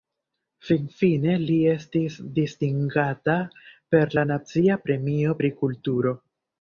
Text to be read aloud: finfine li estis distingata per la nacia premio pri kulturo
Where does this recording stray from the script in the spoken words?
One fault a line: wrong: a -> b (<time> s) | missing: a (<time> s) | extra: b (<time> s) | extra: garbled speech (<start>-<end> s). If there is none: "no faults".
no faults